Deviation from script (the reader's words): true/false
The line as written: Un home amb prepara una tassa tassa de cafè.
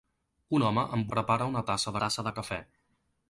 false